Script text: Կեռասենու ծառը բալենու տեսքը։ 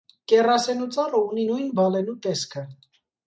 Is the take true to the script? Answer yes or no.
no